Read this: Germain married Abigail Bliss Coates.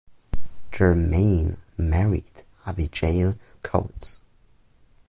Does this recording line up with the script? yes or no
no